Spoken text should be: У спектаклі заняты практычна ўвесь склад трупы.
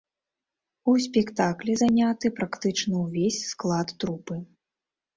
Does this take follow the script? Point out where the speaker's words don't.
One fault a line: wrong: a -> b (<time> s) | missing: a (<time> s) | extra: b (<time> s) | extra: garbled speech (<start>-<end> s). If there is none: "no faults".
no faults